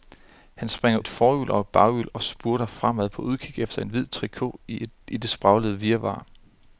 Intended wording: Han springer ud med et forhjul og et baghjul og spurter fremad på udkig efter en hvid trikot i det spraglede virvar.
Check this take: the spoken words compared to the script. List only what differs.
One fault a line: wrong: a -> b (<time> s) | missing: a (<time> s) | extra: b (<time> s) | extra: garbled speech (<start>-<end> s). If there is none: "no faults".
missing: ud med (1.0 s)